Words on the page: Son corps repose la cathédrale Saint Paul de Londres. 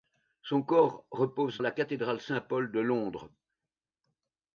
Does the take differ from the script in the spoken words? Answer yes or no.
no